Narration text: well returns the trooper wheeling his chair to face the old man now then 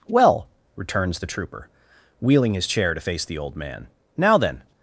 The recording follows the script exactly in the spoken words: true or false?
true